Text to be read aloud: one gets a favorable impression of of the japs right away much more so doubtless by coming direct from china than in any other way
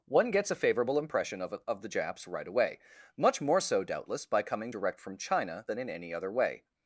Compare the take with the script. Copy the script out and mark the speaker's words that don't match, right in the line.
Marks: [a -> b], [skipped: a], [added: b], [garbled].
one gets a favorable impression of of the japs right away much more so doubtless by coming direct from china than in any other way